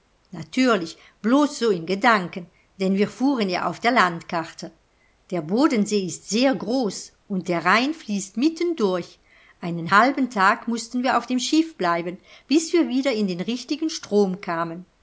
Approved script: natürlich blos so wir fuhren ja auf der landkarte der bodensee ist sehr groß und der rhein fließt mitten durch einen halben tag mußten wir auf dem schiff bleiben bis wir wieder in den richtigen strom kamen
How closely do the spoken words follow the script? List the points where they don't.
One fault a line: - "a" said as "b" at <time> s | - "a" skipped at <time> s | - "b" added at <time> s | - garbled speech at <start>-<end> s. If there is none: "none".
- "in gedanken denn" added at 1.7 s